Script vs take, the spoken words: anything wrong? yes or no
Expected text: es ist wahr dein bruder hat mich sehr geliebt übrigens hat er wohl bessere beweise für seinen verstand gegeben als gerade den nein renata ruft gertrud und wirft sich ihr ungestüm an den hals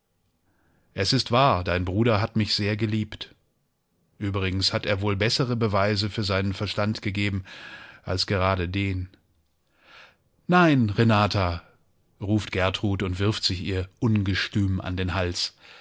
no